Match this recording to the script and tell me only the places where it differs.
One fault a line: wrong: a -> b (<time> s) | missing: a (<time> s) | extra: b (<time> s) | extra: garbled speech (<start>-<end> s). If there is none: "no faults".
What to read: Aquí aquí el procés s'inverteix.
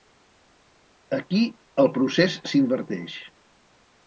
missing: aquí (1.4 s)